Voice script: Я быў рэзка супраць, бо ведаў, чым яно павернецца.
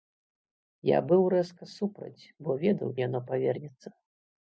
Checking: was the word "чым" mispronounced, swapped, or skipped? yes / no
yes